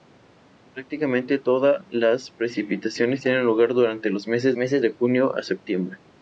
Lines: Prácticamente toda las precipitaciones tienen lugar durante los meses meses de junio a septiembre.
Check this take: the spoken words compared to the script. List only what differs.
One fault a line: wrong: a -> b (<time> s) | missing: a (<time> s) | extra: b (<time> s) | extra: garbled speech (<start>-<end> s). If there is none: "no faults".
no faults